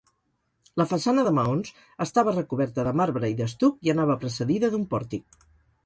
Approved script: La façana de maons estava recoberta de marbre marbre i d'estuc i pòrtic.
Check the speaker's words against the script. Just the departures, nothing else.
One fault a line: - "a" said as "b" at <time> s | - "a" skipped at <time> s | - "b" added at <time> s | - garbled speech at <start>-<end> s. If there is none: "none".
- "marbre" skipped at 3.3 s
- "anava precedida d'un" added at 4.0 s